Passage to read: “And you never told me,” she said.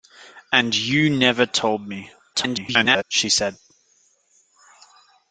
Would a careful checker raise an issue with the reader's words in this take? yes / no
yes